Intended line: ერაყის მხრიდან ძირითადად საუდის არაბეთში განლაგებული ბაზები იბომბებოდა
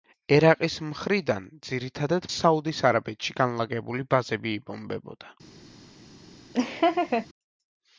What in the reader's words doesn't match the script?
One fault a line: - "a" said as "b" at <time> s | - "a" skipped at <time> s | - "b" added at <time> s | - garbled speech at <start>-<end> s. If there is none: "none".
none